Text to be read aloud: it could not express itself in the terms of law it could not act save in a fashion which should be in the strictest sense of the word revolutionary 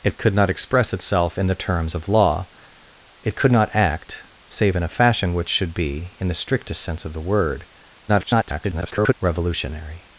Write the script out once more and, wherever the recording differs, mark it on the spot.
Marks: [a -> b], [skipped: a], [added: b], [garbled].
it could not express itself in the terms of law it could not act save in a fashion which should be in the strictest sense of the word [garbled] revolutionary